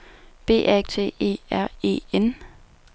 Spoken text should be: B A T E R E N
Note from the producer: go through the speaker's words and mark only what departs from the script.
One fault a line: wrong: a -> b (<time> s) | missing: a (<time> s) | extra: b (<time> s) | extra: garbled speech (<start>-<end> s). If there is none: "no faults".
no faults